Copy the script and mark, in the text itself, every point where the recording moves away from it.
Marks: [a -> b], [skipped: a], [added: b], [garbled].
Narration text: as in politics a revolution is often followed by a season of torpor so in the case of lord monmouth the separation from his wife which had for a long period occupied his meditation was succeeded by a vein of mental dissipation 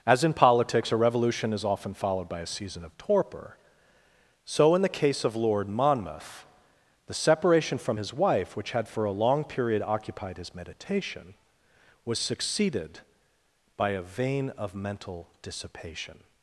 as in politics a revolution is often followed by a season of torpor so in the case of lord monmouth the separation from his wife which had for a long period occupied his meditation was succeeded by a vein of mental dissipation